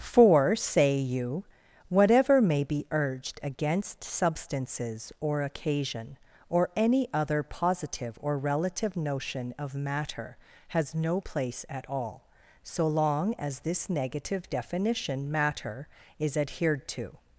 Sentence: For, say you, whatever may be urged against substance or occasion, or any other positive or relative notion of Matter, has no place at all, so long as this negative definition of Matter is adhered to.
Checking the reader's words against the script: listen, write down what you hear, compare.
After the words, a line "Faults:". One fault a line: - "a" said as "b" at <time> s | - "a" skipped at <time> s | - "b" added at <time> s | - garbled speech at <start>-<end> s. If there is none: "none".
For, say you, whatever may be urged against substances or occasion, or any other positive or relative notion of Matter, has no place at all, so long as this negative definition Matter is adhered to.
Faults:
- "substance" said as "substances" at 4.0 s
- "of" skipped at 15.3 s